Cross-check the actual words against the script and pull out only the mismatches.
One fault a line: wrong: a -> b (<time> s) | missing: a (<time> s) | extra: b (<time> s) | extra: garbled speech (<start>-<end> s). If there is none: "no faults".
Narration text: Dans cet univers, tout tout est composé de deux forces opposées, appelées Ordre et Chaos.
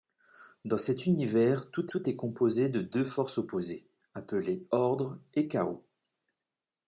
no faults